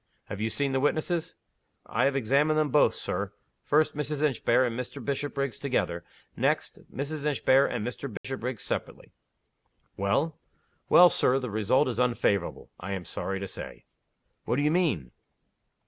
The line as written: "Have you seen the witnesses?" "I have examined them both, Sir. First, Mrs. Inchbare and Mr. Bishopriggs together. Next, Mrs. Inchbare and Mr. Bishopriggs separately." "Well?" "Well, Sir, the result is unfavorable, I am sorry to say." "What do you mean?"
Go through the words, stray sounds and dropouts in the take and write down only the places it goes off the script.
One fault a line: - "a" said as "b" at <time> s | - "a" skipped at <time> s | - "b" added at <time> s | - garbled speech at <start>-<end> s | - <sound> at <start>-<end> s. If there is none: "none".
- dropout at 8.2-8.2 s